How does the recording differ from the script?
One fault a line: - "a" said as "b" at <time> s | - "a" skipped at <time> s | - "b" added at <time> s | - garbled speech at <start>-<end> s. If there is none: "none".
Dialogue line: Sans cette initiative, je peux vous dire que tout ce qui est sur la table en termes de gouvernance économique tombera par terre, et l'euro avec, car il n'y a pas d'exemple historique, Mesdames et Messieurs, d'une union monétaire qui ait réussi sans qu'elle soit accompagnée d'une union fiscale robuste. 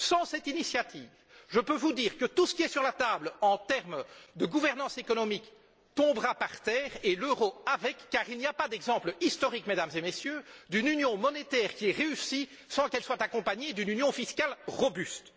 none